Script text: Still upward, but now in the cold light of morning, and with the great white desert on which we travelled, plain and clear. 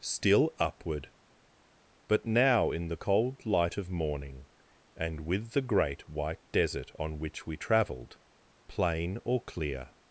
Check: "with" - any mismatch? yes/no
no